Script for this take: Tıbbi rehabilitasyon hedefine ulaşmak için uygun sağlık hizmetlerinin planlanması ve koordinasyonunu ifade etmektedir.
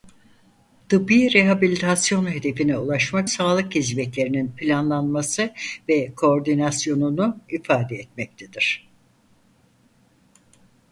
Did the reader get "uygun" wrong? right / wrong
wrong